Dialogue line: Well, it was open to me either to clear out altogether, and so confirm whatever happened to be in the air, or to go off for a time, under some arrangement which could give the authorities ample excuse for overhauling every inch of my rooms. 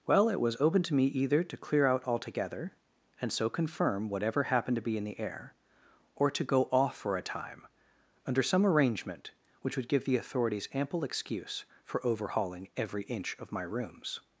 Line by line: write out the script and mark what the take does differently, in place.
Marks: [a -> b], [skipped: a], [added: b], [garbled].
Well, it was open to me either to clear out altogether, and so confirm whatever happened to be in the air, or to go off for a time, under some arrangement which [could -> would] give the authorities ample excuse for overhauling every inch of my rooms.